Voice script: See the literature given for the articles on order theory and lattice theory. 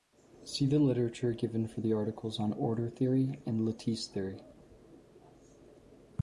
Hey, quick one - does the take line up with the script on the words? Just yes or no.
yes